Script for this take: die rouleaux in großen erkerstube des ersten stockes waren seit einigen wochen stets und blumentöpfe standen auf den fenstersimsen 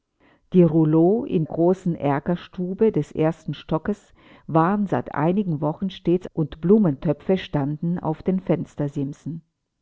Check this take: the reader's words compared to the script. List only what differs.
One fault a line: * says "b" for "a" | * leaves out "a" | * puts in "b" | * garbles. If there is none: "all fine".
all fine